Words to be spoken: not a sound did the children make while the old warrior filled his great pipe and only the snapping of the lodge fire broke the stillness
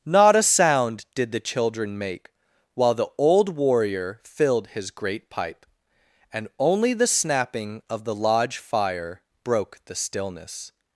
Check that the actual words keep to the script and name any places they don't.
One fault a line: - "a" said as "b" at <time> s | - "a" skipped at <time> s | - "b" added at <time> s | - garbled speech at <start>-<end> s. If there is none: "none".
none